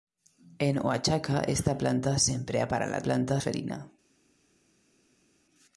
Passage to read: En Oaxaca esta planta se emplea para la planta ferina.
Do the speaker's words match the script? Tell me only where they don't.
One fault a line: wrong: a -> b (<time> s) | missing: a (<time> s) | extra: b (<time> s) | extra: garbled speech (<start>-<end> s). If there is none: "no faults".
no faults